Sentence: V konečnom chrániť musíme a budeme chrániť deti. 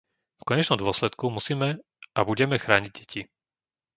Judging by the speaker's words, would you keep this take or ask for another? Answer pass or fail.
fail